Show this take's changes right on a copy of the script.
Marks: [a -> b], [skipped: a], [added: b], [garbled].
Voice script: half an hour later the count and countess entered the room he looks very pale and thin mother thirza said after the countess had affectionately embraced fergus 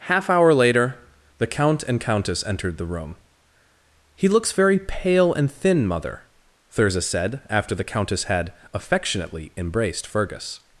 half [skipped: an] hour later the count and countess entered the room he looks very pale and thin mother thirza said after the countess had affectionately embraced fergus